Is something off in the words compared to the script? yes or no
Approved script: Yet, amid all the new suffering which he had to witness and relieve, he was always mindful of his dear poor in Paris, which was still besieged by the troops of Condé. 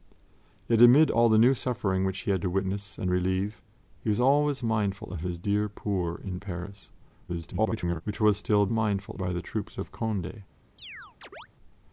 yes